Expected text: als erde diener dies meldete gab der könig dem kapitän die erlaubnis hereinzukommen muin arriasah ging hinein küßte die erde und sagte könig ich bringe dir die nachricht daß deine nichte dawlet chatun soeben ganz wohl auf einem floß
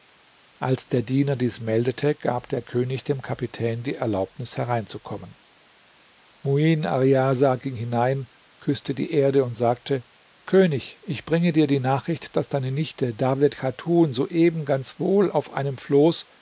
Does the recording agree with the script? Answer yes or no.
no